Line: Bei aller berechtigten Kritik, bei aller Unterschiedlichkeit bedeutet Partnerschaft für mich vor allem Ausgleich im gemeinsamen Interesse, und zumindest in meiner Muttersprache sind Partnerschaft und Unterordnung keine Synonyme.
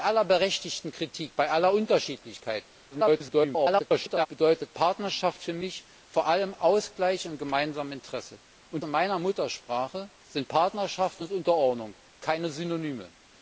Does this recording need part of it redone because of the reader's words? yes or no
yes